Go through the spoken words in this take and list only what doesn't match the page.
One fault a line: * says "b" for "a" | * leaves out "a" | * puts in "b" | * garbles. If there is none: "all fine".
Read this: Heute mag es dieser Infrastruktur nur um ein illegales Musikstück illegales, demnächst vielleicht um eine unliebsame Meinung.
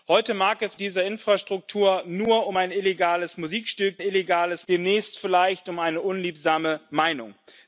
all fine